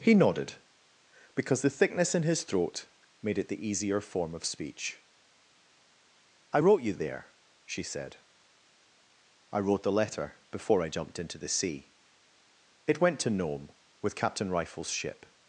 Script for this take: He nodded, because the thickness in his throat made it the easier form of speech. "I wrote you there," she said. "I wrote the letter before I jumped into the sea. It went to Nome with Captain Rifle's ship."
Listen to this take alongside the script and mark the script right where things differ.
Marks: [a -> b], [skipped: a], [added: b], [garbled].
He nodded, because the thickness in his throat made it the easier form of speech. "I wrote you there," she said. "I wrote the letter before I jumped into the sea. It went to Nome with Captain Rifle's ship."